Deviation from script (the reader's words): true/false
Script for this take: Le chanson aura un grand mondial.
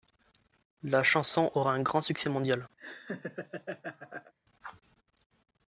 true